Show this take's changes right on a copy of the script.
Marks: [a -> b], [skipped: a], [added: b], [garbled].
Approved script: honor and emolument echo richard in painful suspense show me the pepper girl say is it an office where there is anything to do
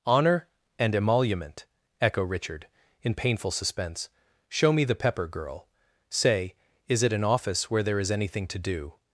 honor and emolument echo richard in painful suspense show me the pepper girl say is it an office where there is anything to do